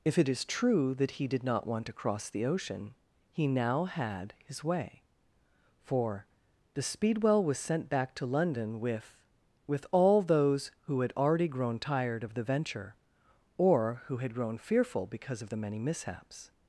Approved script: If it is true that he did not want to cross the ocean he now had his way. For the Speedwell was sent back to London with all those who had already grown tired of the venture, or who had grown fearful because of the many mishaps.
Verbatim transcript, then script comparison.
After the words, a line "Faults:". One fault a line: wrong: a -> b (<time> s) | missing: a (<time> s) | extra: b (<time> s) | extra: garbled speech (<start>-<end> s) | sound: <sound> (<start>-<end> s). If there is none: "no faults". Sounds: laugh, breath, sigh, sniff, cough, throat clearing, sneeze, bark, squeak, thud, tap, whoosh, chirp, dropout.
If it is true that he did not want to cross the ocean he now had his way. For the Speedwell was sent back to London with with all those who had already grown tired of the venture, or who had grown fearful because of the many mishaps.
Faults:
extra: with (9.7 s)